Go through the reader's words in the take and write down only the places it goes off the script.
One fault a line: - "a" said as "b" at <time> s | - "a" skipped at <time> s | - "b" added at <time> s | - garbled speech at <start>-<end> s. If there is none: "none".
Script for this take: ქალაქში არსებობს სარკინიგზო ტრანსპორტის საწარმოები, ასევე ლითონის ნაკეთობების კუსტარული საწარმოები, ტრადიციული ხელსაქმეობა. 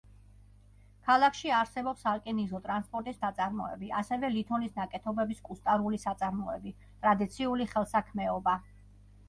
none